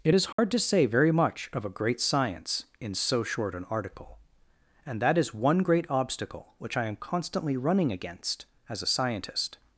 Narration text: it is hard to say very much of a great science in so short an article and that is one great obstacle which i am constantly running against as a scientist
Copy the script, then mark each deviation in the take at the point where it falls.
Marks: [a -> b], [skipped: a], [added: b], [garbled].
it is hard to say very much of a great science in so short an article and that is one great obstacle which i am constantly running against as a scientist